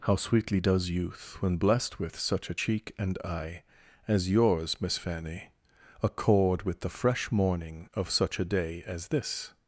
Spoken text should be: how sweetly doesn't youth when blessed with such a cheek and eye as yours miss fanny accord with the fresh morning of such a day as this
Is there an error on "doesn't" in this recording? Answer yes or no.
yes